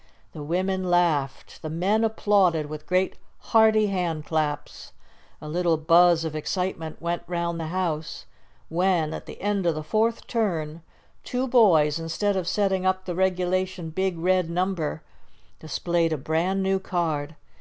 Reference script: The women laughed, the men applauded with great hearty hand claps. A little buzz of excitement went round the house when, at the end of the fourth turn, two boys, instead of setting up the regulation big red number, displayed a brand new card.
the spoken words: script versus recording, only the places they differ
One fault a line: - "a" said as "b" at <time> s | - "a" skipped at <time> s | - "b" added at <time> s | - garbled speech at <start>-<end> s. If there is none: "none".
none